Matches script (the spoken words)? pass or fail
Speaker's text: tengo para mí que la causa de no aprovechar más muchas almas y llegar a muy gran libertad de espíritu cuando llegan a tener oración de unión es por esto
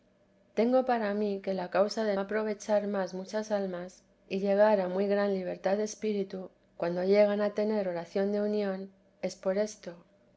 fail